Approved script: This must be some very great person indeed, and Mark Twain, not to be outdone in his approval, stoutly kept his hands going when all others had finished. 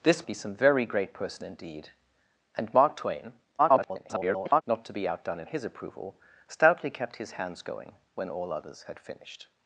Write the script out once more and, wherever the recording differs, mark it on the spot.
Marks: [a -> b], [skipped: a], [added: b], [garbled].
This [skipped: must] be some very great person indeed, and Mark Twain, [garbled] not to be outdone in his approval, stoutly kept his hands going when all others had finished.